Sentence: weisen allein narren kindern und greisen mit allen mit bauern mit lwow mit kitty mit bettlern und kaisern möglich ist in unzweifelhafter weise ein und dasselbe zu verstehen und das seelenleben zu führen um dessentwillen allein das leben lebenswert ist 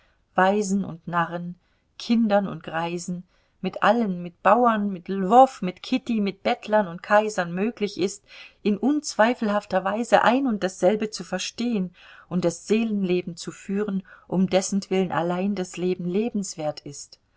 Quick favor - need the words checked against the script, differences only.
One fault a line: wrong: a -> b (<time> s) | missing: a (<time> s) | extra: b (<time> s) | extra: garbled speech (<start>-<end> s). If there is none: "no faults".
wrong: allein -> und (0.8 s)